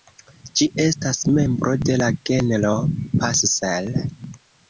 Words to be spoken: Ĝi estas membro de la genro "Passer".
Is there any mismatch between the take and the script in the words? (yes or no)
no